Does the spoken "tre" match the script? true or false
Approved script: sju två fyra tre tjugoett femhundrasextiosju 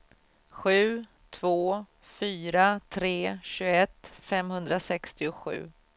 true